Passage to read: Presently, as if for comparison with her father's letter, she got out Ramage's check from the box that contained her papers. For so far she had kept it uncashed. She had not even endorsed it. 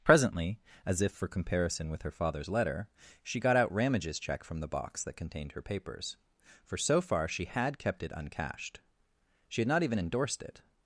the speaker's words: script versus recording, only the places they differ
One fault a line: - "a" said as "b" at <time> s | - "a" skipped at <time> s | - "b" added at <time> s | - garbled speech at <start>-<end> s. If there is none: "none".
none